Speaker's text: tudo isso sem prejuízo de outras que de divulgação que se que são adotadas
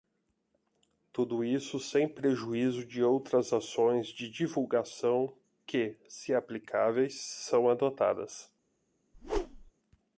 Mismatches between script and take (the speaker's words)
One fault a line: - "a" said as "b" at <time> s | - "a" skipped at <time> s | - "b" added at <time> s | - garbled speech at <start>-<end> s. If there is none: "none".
- "que" said as "ações" at 3.5 s
- "que" said as "aplicáveis" at 6.3 s